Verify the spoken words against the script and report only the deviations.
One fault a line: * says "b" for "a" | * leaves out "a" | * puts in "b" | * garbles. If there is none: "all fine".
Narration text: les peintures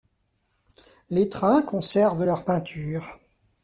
* puts in "trains conservent leurs"